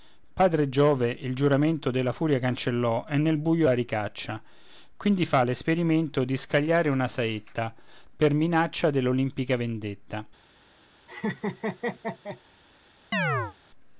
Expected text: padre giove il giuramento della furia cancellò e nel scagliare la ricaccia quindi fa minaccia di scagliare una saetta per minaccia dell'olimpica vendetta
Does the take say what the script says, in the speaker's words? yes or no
no